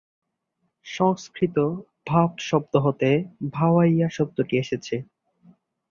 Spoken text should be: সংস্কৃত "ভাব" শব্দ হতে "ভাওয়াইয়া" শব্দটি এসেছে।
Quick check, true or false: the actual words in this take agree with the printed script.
true